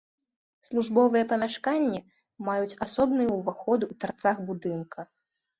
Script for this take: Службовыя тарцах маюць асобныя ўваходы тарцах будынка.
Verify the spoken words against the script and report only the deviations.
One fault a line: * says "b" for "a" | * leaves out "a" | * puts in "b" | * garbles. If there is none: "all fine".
* says "памяшканні" for "тарцах"
* puts in "ў"